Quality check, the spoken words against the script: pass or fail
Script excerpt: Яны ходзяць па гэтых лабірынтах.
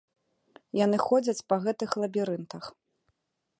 pass